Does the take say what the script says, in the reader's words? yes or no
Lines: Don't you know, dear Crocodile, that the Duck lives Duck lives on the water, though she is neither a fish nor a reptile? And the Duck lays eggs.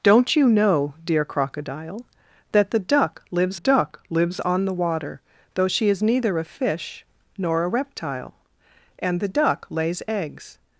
yes